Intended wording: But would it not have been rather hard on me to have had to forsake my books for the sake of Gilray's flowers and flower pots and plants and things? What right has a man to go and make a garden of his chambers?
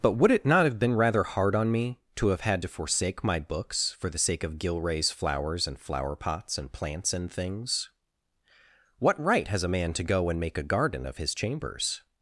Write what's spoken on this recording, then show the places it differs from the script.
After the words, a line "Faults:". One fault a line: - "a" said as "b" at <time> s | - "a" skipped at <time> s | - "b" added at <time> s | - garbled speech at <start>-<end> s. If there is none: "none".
But would it not have been rather hard on me to have had to forsake my books for the sake of Gilray's flowers and flower pots and plants and things? What right has a man to go and make a garden of his chambers?
Faults:
none